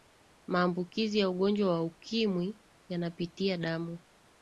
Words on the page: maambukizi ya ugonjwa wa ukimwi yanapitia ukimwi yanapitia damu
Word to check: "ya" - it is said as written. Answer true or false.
true